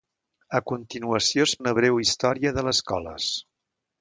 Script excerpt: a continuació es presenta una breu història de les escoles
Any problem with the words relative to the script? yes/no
yes